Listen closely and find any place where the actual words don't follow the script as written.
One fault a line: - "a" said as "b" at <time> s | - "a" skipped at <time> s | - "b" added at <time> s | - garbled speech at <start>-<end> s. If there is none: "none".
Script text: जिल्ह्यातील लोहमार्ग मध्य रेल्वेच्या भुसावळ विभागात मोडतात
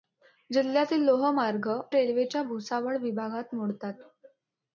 - "मध्य" skipped at 1.7 s